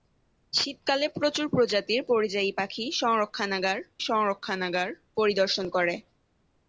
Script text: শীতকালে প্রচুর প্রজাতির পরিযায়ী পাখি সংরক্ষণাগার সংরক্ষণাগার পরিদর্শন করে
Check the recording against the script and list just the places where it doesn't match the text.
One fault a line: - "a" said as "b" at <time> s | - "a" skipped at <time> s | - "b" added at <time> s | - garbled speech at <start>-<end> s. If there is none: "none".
none